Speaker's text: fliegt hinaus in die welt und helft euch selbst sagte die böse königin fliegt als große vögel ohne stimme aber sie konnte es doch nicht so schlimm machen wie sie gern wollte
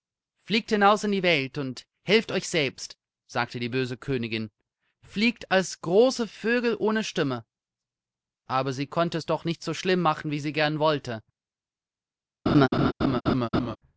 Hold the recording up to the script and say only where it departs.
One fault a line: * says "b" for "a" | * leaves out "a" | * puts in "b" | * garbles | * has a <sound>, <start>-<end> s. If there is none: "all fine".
* has a laugh, 12.5-13.8 s